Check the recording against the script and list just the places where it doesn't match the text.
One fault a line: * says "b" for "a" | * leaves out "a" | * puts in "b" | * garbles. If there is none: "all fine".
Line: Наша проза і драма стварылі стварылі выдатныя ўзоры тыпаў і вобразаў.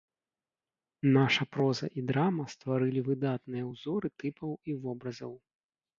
* leaves out "стварылі"